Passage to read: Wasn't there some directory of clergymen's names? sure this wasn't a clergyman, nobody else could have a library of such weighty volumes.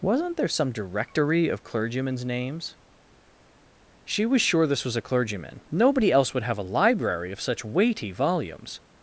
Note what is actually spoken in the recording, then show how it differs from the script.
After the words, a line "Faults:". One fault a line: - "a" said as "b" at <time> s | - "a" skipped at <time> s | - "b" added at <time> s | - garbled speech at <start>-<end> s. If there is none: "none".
Wasn't there some directory of clergymen's names? she was sure this was a clergyman, nobody else would have a library of such weighty volumes.
Faults:
- "she was" added at 4.0 s
- "wasn't" said as "was" at 4.8 s
- "could" said as "would" at 6.3 s